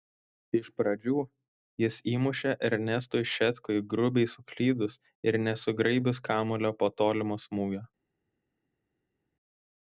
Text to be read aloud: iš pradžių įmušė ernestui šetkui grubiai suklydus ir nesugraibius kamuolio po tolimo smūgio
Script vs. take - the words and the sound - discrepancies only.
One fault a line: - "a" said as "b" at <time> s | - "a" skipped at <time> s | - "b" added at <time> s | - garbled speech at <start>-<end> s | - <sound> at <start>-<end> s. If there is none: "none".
- "jis" added at 1.8 s